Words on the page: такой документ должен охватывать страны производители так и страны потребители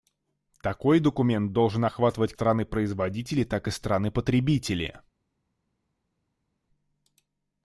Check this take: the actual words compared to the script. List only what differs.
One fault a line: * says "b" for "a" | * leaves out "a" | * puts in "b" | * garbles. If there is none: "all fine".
all fine